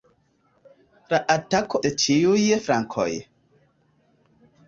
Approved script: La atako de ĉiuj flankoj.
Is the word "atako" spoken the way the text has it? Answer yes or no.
yes